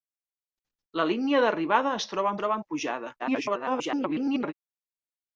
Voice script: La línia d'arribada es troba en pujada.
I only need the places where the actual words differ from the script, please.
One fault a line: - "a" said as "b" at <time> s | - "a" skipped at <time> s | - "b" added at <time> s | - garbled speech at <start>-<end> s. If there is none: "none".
- "troba" added at 2.4 s
- garbled speech at 3.2-4.5 s